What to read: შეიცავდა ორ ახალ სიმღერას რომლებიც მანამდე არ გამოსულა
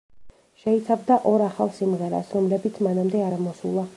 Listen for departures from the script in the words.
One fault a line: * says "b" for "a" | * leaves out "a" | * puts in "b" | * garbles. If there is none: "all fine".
* leaves out "არ"